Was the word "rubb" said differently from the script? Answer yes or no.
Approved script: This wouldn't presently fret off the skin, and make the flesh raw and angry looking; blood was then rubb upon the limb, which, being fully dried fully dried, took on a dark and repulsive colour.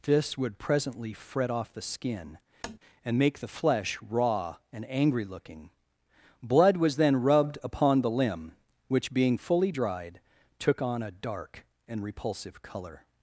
yes